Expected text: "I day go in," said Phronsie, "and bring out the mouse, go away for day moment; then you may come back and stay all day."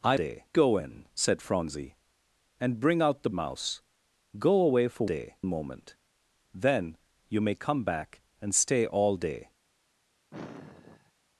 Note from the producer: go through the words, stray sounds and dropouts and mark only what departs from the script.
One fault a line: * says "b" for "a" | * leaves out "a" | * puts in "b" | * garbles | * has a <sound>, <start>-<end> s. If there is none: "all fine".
* has a sigh, 10.3-11.1 s